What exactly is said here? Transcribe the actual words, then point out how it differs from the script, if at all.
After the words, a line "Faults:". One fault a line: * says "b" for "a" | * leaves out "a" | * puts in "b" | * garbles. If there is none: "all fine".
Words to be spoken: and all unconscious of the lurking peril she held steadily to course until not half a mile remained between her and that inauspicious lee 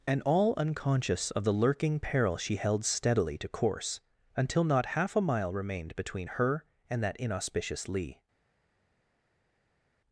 and all unconscious of the lurking peril she held steadily to course until not half a mile remained between her and that inauspicious lee
Faults:
all fine